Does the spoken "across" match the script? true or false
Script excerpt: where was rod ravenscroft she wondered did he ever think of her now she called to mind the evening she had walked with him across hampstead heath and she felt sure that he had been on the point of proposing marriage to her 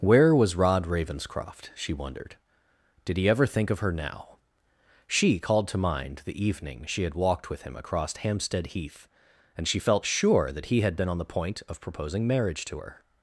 true